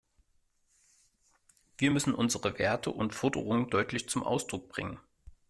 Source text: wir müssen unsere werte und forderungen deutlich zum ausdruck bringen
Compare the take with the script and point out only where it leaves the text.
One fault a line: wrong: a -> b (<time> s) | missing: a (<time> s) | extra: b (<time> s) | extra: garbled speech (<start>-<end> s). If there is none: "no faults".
no faults